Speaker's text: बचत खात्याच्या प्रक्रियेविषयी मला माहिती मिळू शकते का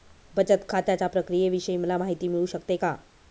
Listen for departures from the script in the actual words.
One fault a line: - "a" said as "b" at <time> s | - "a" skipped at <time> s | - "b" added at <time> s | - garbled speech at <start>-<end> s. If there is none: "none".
none